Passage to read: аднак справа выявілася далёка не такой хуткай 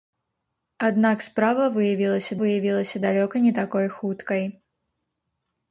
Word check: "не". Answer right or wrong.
right